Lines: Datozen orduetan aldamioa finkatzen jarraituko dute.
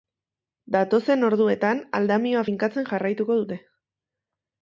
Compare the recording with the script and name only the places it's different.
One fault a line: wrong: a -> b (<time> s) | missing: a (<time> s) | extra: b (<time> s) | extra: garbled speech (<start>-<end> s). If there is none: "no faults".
no faults